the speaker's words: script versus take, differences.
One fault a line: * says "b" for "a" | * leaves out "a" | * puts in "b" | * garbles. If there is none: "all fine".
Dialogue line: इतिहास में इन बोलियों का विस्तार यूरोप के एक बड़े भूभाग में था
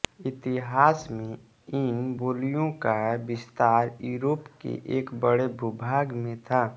all fine